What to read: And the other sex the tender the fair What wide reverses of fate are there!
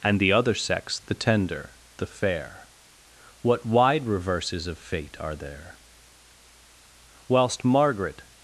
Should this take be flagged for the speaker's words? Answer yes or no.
yes